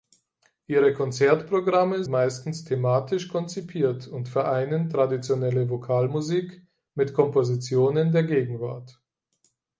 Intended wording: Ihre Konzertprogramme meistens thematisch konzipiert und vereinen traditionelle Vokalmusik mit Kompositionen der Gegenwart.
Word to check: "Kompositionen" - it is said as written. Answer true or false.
true